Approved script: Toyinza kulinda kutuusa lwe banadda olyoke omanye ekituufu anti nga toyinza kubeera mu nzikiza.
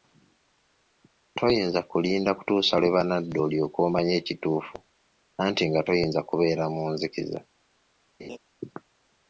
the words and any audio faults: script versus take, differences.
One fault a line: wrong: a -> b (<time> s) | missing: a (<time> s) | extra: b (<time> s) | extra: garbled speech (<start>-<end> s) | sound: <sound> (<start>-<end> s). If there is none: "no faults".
sound: laugh (8.2-8.4 s)